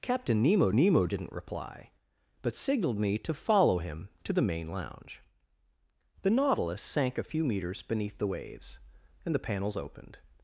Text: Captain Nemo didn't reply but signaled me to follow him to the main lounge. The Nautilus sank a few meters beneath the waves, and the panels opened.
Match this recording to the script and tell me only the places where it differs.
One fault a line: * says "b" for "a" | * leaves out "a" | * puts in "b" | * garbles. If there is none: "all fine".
* puts in "Nemo"